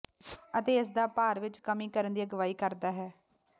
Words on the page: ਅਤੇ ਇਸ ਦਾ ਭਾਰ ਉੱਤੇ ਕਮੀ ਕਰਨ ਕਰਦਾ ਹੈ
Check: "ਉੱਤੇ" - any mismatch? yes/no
yes